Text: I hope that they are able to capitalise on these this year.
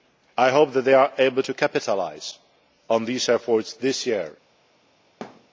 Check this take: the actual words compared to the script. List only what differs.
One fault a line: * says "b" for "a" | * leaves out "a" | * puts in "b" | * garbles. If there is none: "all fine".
* puts in "efforts"